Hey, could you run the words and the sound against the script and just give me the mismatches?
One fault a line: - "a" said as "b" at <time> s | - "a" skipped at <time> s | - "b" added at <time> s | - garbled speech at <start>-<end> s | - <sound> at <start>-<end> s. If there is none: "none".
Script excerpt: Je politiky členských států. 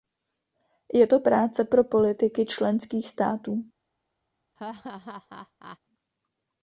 - "to práce pro" added at 1.1 s
- laugh at 4.6-5.8 s